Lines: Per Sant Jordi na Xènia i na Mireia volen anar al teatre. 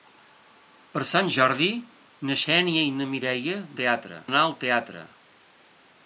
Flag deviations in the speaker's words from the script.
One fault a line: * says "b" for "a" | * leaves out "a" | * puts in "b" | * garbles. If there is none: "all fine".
* says "teatre" for "volen"